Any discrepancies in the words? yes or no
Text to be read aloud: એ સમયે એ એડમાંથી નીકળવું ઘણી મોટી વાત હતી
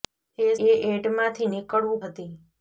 yes